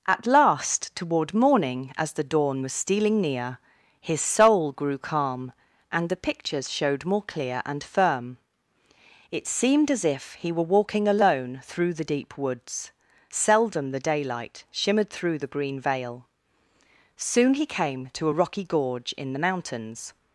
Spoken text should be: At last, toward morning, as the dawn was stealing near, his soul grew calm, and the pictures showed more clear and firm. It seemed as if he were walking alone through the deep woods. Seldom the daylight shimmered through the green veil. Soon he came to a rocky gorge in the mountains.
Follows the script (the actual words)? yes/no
yes